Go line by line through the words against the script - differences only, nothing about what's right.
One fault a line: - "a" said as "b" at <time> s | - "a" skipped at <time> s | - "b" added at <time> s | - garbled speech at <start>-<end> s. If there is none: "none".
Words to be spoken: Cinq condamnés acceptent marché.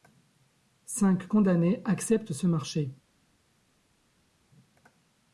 - "ce" added at 2.3 s